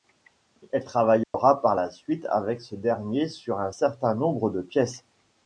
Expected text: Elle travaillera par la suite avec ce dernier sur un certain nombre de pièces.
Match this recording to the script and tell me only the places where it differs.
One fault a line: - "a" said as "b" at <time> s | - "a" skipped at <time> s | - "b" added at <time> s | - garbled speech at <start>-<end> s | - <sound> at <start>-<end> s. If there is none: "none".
- dropout at 1.2-1.3 s